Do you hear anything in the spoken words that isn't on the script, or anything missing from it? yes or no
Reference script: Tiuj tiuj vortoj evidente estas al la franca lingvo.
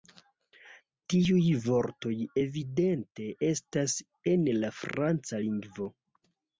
yes